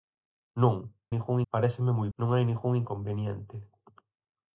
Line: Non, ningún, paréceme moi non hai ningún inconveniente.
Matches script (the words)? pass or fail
pass